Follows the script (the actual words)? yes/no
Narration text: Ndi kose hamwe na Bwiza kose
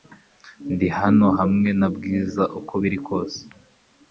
no